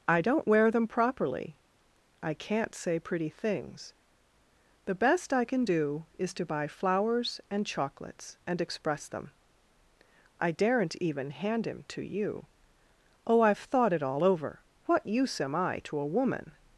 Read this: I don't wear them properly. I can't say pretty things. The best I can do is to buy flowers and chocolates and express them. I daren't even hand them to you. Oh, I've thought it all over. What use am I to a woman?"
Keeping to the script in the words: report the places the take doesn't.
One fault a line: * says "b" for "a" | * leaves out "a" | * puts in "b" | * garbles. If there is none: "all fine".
* says "him" for "them"